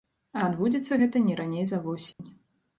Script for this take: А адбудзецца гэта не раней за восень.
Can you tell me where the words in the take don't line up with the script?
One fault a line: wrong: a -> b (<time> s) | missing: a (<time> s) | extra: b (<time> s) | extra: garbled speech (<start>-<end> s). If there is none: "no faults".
no faults